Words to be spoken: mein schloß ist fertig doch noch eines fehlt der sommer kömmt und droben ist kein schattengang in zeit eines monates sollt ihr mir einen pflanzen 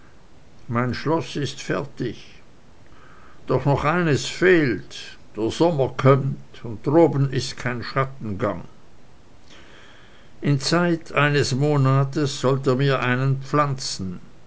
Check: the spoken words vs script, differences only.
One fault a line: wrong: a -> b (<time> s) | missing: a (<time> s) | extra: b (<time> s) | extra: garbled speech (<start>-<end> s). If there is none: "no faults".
no faults